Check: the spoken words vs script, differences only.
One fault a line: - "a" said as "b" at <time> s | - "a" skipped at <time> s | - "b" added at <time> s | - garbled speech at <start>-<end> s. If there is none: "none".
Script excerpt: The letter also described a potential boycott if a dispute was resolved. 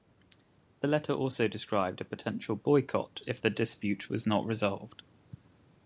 - "a" said as "the" at 3.4 s
- "not" added at 4.2 s